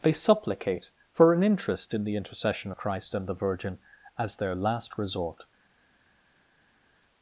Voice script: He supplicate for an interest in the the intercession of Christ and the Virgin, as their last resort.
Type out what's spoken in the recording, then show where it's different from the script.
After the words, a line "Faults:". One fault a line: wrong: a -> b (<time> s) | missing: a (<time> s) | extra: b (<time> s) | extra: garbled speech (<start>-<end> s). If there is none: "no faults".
They supplicate for an interest in the intercession of Christ and the Virgin, as their last resort.
Faults:
wrong: He -> They (0.0 s)
missing: the (2.1 s)